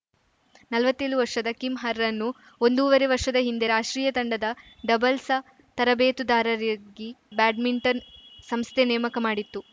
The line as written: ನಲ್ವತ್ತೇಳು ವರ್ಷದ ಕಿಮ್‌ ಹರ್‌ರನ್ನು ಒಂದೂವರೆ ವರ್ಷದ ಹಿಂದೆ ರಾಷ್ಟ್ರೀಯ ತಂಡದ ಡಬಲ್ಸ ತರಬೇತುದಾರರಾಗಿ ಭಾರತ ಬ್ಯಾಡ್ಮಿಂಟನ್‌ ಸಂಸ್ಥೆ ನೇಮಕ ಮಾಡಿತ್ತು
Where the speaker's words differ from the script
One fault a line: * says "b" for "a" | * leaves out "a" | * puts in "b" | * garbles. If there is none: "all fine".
* leaves out "ಭಾರತ"